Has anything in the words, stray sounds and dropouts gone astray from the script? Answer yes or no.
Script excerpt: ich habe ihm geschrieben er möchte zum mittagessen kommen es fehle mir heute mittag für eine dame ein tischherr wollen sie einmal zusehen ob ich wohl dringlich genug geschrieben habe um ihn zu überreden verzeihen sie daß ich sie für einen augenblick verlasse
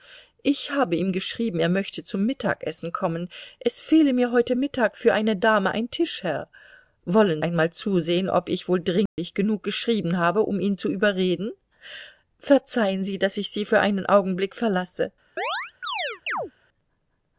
yes